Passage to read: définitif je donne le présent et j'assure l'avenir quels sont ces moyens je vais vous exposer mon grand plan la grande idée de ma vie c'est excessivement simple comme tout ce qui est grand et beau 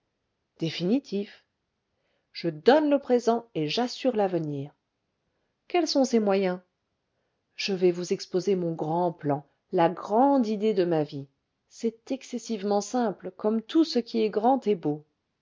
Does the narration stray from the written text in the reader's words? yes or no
no